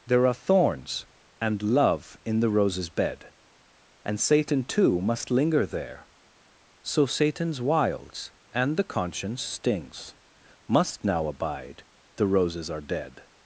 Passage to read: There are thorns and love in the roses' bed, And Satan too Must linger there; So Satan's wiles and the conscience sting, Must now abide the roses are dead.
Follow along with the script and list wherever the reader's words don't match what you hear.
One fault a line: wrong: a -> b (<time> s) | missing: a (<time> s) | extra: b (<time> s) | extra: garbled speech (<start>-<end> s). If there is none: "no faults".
wrong: sting -> stings (9.4 s)